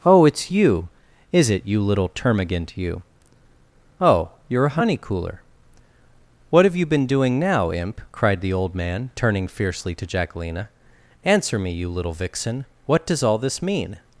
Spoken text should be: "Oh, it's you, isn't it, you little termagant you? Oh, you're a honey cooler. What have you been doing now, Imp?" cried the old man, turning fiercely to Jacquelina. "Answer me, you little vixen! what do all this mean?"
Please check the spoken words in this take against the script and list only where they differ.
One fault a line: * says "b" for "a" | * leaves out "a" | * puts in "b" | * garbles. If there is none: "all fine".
* says "is" for "isn't"
* says "does" for "do"